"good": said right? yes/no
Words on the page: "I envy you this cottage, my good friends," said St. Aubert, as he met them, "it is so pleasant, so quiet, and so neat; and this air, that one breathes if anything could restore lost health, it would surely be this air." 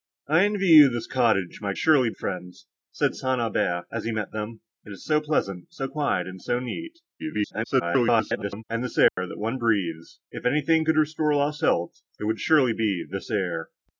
no